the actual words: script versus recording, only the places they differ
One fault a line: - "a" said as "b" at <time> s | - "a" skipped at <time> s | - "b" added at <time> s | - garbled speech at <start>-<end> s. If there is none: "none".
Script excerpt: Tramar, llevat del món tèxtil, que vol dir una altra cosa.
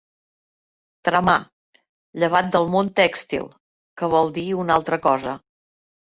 none